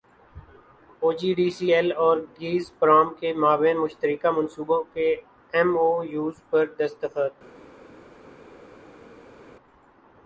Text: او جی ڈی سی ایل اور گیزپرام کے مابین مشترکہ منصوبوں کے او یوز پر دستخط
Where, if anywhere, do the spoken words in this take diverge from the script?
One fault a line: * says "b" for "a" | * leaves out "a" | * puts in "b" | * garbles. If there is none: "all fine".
* puts in "ایم"